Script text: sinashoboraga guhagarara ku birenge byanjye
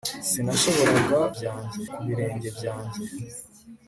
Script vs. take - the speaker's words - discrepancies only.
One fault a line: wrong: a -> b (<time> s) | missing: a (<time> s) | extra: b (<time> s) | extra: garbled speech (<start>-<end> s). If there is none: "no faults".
wrong: guhagarara -> byanjye (1.4 s)